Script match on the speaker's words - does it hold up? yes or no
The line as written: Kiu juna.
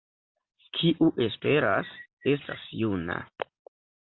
no